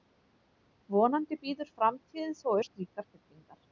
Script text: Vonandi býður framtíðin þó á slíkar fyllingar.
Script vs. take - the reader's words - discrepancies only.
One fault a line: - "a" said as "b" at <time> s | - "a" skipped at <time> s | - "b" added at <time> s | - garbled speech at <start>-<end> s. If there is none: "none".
none